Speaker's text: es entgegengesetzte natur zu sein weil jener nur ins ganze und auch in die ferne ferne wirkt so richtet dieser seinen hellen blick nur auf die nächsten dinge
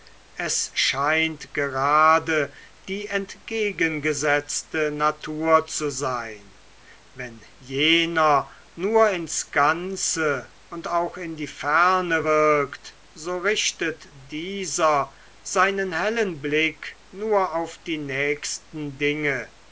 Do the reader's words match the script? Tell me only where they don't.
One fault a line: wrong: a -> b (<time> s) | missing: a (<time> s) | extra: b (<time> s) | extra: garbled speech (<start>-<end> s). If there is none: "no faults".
extra: scheint gerade die (0.7 s)
wrong: weil -> wenn (7.1 s)
missing: ferne (12.3 s)